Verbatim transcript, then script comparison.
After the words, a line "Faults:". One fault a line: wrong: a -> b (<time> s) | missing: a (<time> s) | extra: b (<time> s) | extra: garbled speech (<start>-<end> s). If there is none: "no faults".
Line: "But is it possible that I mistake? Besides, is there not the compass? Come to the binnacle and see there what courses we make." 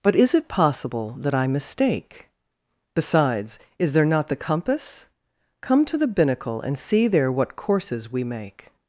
"But is it possible that I mistake? Besides, is there not the compass? Come to the binnacle and see there what courses we make."
Faults:
no faults